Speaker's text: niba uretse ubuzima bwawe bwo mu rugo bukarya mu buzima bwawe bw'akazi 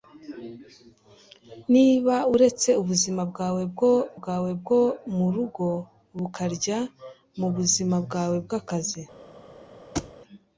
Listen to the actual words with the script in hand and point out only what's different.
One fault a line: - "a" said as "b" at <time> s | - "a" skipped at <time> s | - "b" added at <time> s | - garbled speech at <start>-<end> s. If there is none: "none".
- "bwawe bwo" added at 4.2 s